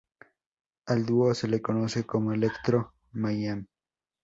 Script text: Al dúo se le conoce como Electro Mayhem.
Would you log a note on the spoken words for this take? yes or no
no